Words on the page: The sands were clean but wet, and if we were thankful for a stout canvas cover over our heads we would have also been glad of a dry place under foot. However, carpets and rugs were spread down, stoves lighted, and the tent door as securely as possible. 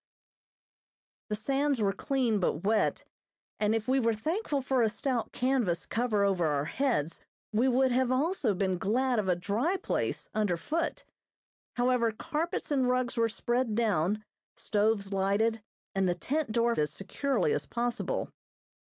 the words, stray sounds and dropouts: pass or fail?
pass